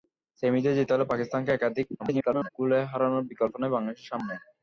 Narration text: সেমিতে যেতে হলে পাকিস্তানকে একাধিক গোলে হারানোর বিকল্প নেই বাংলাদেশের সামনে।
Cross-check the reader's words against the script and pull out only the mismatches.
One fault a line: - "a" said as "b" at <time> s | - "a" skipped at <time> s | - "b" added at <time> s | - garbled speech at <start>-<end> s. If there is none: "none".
- garbled speech at 2.0-2.5 s